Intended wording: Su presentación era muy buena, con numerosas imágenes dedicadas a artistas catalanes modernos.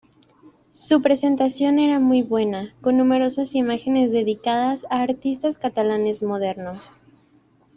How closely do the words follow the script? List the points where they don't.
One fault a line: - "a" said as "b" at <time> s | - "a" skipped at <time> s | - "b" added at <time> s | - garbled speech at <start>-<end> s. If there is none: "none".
none